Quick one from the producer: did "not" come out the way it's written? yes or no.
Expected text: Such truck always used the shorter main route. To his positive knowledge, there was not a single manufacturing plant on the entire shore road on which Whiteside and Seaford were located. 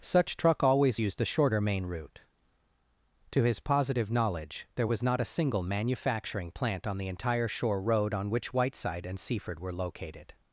yes